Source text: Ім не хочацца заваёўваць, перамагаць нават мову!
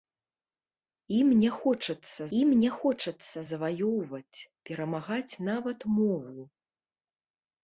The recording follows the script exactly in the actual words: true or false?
false